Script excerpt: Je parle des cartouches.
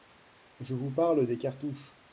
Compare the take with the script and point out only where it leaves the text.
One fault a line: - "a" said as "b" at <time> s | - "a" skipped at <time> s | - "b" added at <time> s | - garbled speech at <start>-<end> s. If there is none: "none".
- "vous" added at 0.7 s